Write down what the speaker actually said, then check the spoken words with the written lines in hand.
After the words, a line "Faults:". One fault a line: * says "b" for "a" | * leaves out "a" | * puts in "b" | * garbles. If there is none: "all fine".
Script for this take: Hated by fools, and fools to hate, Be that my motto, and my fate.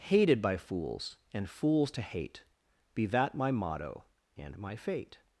Hated by fools, and fools to hate, Be that my motto, and my fate.
Faults:
all fine